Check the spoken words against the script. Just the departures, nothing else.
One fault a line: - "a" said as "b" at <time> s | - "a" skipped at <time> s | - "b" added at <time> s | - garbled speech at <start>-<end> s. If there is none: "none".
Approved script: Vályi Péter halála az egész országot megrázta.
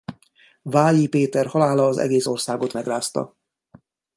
none